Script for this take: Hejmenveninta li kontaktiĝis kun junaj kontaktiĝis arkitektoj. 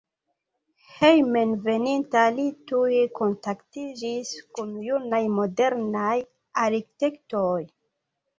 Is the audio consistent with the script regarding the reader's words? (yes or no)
no